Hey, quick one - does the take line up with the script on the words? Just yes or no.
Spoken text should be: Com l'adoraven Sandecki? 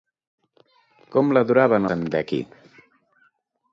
yes